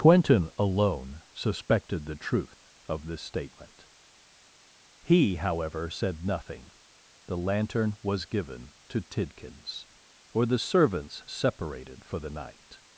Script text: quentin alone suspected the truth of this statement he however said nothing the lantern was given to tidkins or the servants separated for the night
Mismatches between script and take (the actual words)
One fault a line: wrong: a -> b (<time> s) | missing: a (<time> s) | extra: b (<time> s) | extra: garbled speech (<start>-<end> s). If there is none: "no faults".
no faults